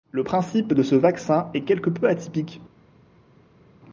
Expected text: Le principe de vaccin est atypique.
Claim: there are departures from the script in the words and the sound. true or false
true